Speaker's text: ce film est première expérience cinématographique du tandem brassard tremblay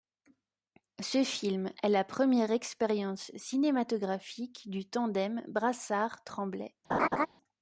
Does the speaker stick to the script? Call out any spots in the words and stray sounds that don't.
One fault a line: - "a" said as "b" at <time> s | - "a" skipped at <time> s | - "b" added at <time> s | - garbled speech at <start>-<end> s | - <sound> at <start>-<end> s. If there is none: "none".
- "la" added at 1.9 s
- laugh at 6.9-7.3 s